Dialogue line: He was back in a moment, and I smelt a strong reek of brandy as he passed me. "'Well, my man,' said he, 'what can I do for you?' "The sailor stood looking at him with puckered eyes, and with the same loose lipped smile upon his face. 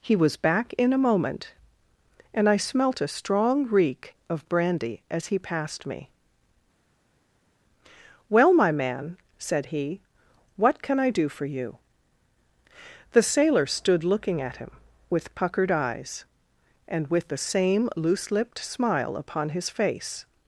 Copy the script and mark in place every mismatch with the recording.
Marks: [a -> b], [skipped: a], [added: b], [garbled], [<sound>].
He was back in a moment, and I smelt a strong reek of brandy as he passed me. "'Well, my man,' said he, 'what can I do for you?' "The sailor stood looking at him with puckered eyes, and with the same loose lipped smile upon his face.